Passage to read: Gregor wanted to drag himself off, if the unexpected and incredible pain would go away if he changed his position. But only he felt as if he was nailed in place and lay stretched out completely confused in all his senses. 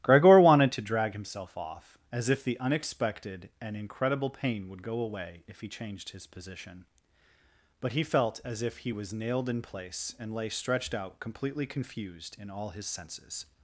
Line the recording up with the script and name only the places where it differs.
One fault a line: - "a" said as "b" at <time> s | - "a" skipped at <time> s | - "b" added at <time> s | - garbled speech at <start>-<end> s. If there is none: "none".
- "as" added at 2.1 s
- "only" skipped at 7.9 s